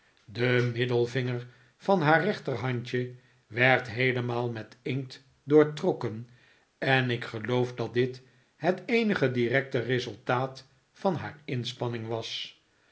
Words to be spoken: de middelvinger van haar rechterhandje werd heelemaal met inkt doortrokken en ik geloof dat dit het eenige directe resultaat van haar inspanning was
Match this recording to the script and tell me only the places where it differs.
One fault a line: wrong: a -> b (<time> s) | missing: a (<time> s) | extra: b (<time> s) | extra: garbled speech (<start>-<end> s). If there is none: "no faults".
no faults